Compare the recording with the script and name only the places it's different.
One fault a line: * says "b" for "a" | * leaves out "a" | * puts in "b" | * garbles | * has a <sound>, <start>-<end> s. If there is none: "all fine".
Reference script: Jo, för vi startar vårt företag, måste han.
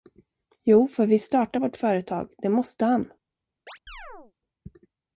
* puts in "det"
* has a chirp, 3.7-4.3 s